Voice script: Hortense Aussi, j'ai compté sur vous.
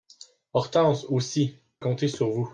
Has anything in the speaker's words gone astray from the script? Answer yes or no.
yes